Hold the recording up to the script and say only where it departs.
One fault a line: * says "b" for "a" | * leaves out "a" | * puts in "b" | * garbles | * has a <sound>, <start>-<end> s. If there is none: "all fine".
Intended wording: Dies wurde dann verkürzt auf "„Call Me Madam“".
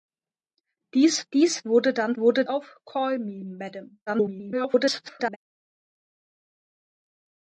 * puts in "dies"
* says "wurde" for "verkürzt"
* garbles